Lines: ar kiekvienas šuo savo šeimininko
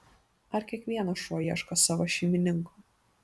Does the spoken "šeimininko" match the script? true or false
true